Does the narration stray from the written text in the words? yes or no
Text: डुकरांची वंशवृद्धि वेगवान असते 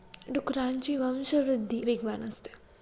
no